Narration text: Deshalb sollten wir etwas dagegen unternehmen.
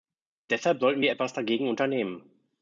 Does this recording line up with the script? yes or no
yes